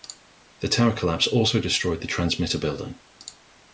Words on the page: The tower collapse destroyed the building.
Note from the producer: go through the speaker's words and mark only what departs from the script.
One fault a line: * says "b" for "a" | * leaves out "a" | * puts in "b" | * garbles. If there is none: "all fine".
* puts in "also"
* puts in "transmitter"